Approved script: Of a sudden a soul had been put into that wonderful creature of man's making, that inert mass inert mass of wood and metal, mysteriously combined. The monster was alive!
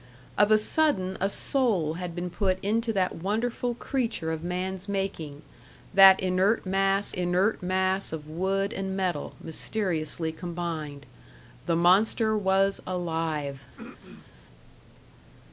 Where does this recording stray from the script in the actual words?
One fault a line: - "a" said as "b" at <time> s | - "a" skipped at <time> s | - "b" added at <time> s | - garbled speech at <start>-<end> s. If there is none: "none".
none